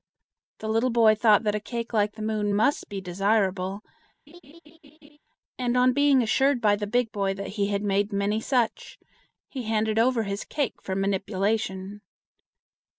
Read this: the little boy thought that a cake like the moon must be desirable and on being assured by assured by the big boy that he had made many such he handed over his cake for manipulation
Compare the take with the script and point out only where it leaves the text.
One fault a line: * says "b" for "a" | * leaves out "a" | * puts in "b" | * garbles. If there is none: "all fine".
* leaves out "assured by"